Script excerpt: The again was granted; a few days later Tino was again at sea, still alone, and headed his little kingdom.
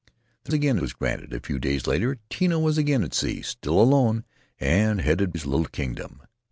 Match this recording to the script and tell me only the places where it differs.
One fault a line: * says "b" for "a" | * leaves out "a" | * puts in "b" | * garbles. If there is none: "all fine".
all fine